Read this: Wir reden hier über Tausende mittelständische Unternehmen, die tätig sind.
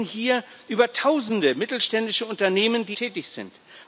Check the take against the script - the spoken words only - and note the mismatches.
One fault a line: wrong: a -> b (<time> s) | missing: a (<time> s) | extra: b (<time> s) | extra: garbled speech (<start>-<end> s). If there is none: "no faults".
no faults